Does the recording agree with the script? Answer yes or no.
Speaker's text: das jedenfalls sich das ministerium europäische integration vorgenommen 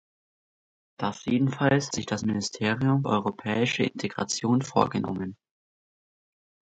yes